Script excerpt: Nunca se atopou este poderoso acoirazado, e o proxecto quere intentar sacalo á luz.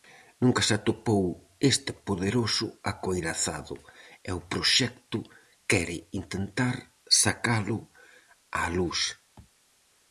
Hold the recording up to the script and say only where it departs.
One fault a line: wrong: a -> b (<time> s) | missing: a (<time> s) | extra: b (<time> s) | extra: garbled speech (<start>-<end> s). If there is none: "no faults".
no faults